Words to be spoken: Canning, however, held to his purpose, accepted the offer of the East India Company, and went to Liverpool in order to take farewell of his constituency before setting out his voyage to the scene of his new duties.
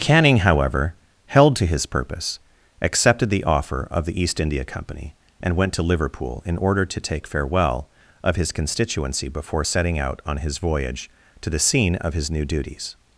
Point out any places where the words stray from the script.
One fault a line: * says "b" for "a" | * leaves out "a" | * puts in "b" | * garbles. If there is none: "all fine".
* puts in "on"